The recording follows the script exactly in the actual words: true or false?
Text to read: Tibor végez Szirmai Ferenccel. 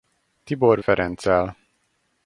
false